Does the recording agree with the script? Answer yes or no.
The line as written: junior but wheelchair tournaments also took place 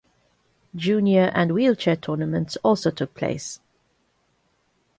no